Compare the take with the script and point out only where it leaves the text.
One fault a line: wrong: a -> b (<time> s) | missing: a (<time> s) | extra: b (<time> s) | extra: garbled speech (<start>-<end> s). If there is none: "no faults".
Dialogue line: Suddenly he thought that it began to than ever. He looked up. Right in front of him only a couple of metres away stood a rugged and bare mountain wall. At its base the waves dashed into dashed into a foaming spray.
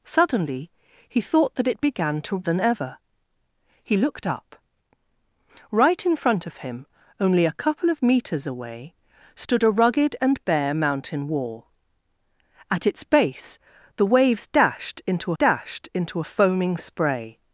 no faults